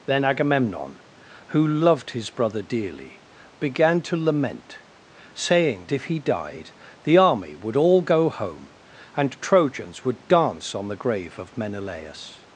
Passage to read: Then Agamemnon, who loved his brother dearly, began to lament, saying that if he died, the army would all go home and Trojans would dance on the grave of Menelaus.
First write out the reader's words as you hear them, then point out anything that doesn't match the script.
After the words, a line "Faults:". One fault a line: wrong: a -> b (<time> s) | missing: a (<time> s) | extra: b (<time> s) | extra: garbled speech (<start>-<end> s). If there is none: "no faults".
Then Agamemnon, who loved his brother dearly, began to lament, saying if he died, the army would all go home and Trojans would dance on the grave of Menelaus.
Faults:
missing: that (5.9 s)